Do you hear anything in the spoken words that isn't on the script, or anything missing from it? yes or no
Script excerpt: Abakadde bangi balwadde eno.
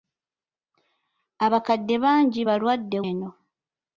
no